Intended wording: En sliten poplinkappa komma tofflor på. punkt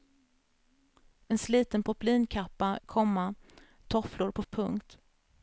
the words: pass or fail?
pass